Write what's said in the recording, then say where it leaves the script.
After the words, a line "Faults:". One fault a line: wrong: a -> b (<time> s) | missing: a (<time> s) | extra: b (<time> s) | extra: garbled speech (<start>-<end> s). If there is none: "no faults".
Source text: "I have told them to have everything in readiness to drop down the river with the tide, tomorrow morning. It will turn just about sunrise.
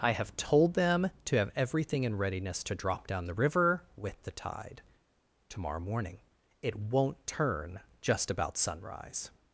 "I have told them to have everything in readiness to drop down the river with the tide, tomorrow morning. It won't turn just about sunrise.
Faults:
wrong: will -> won't (6.8 s)